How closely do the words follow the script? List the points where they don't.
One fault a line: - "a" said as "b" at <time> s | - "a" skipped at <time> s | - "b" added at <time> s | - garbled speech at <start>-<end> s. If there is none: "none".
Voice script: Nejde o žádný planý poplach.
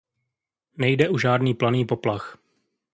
none